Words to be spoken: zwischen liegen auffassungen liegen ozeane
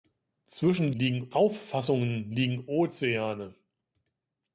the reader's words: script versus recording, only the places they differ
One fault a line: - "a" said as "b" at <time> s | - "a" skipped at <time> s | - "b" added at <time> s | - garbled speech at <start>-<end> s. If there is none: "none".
none